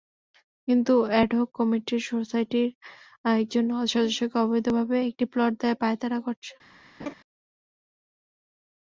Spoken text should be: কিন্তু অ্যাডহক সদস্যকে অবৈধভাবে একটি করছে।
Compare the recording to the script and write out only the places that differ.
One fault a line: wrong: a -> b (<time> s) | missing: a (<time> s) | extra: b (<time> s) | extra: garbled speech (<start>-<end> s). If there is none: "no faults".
extra: কমিটি সোসাইটির একজন (1.6 s)
extra: প্লট দেওয়ার পাঁয়তারা (5.3 s)